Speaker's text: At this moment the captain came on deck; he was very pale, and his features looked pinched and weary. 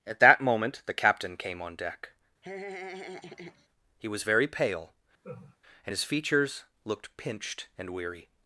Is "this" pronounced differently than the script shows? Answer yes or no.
yes